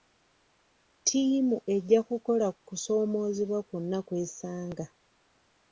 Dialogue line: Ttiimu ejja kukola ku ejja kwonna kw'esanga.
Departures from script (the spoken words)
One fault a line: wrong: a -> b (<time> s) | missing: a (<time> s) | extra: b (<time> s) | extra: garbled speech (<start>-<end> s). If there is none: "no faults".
wrong: ejja -> kusoomoozebwa (2.7 s)